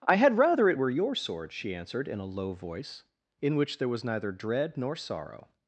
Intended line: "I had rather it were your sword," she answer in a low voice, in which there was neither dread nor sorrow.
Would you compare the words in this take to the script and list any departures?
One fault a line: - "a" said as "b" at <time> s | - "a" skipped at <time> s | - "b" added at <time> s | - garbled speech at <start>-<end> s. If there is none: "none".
- "answer" said as "answered" at 1.7 s